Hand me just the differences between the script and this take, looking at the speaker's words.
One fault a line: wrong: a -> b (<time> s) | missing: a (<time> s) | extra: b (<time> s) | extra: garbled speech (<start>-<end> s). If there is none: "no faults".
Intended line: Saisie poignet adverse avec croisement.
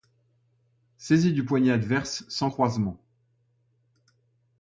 extra: du (1.3 s)
wrong: avec -> sans (2.3 s)